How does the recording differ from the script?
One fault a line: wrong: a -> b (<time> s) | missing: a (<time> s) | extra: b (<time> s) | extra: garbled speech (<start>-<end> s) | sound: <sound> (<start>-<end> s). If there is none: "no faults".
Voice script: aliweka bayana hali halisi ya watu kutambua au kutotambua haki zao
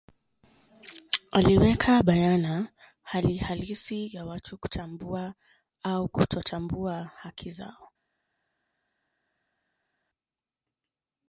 no faults